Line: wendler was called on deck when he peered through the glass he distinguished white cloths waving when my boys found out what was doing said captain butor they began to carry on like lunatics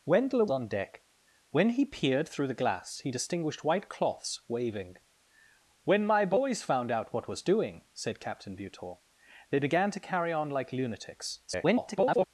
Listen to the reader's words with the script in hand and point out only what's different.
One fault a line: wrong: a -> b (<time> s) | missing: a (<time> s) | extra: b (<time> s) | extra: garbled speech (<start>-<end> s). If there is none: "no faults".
missing: was called (0.5 s)
extra: garbled speech (11.5-12.3 s)